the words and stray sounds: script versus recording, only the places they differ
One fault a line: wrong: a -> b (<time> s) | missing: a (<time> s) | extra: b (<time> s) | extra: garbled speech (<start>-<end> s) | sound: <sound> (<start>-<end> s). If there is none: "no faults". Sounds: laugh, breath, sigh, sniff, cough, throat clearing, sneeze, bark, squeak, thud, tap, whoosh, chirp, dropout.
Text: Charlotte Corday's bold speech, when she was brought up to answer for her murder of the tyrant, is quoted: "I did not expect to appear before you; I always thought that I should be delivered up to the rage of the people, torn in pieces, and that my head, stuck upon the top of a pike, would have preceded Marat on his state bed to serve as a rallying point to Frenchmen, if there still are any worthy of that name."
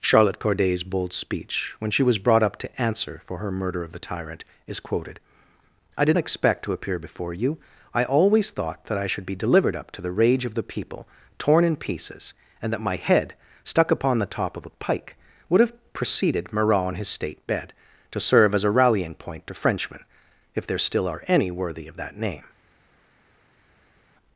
missing: not (6.2 s)